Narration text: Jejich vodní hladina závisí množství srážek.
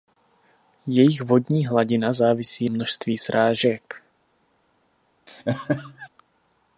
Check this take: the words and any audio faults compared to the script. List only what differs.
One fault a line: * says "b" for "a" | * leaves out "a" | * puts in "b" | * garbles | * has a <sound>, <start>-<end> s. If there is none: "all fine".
* has a laugh, 5.3-6.1 s